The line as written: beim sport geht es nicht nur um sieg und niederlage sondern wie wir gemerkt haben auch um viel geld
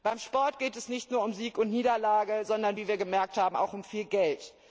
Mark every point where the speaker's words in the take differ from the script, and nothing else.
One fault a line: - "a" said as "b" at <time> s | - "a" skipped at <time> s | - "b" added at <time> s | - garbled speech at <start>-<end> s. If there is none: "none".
none